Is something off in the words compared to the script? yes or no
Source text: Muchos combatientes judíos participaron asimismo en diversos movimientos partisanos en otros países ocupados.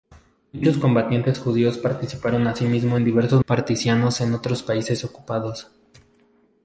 yes